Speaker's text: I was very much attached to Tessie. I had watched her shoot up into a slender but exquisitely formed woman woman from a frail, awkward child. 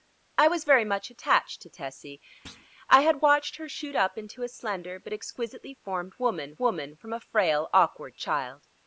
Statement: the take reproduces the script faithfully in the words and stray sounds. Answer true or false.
false